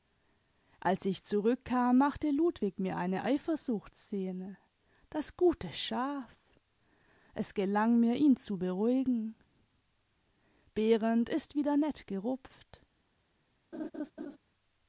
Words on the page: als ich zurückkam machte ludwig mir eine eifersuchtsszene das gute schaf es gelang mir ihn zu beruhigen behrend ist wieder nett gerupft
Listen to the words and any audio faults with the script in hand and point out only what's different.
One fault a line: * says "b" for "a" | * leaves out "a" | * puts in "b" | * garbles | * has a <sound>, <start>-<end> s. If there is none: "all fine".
* has a laugh, 13.7-14.4 s